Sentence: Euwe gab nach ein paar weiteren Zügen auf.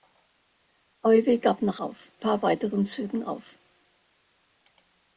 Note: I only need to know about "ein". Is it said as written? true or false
false